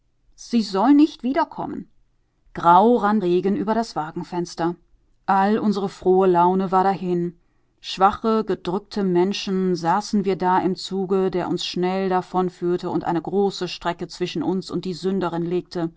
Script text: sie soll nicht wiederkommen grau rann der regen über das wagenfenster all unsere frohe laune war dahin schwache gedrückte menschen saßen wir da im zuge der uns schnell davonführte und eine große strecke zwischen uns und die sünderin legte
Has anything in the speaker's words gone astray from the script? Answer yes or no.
yes